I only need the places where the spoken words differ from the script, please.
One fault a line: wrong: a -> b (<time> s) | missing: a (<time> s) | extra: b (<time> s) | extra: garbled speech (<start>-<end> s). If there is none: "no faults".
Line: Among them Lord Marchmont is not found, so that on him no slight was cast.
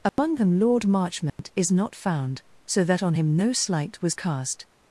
no faults